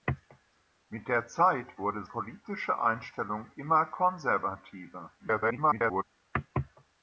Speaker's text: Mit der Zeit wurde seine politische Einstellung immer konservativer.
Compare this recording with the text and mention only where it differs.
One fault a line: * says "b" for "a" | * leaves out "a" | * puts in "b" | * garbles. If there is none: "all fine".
* leaves out "seine"
* garbles